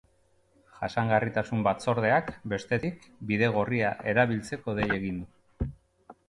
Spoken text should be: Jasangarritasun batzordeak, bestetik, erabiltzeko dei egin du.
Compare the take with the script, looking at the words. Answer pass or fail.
fail